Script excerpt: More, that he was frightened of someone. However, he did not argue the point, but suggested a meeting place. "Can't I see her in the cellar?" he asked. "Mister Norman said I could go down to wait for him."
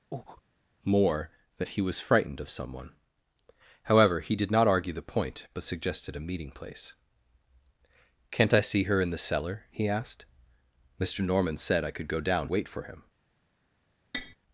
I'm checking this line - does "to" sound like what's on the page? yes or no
no